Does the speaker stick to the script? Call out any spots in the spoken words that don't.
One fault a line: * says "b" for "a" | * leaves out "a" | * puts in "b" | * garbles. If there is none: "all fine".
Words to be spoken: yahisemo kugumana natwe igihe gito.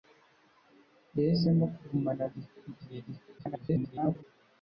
* says "gito" for "natwe"
* garbles